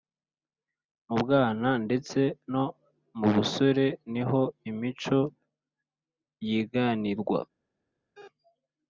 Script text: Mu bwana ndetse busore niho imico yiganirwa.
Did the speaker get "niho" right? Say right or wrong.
right